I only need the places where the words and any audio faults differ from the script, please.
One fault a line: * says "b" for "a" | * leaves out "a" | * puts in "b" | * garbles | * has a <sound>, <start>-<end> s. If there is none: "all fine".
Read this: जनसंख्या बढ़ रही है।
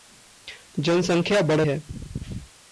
* leaves out "रही"